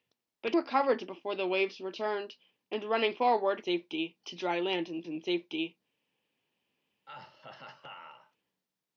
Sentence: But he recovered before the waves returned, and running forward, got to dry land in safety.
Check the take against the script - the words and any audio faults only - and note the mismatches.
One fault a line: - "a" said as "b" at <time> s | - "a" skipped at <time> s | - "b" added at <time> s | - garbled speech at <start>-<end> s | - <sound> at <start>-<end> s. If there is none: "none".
- "he" skipped at 0.6 s
- "got" said as "safety" at 3.6 s
- "in" added at 5.1 s
- laugh at 7.1-8.4 s